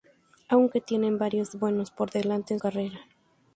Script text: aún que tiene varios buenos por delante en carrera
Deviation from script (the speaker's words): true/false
false